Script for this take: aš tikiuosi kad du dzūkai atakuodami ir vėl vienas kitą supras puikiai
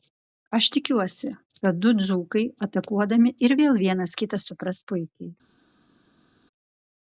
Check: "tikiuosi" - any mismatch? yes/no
no